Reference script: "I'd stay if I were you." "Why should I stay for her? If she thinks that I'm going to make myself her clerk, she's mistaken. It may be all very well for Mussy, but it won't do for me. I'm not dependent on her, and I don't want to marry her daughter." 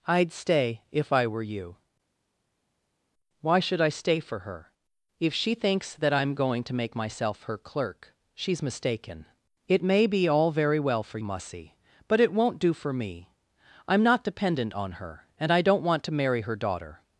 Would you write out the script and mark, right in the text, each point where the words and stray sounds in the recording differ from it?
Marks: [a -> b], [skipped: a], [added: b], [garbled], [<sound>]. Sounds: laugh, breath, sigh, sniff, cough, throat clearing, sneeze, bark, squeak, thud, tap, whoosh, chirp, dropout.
"I'd stay if I were you." "Why should I stay for her? If she thinks that I'm going to make myself her clerk, she's mistaken. It may be all very well for Mussy, but it won't do for me. I'm not dependent on her, and I don't want to marry her daughter."